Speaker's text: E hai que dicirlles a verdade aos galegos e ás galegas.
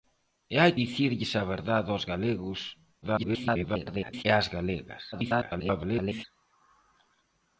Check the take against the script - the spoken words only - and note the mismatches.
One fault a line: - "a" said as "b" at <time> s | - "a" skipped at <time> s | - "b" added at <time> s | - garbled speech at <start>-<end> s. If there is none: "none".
- "que" skipped at 0.7 s
- garbled speech at 3.0-4.2 s
- garbled speech at 5.1-6.2 s